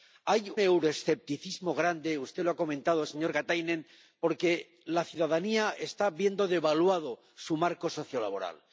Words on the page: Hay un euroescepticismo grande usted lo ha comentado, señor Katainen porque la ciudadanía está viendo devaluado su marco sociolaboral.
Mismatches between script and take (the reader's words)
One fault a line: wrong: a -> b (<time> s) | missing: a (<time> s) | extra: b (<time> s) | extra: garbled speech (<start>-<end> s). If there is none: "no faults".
missing: un (0.5 s)